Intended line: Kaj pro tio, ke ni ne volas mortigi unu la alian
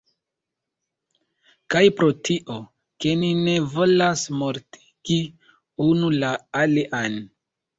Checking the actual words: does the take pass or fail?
pass